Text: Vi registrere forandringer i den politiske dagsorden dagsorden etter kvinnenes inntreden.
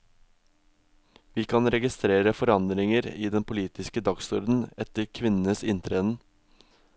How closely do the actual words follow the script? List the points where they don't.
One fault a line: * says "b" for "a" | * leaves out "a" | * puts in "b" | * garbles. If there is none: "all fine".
* puts in "kan"
* leaves out "dagsorden"